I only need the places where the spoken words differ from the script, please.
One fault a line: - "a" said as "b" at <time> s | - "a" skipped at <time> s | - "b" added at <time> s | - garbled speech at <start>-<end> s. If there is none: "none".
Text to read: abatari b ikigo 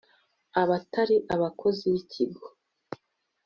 - "abakozi" added at 1.3 s